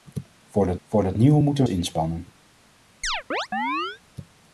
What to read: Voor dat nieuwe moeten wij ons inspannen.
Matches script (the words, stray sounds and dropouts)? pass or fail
fail